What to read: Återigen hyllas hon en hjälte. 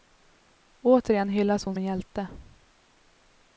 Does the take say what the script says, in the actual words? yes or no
yes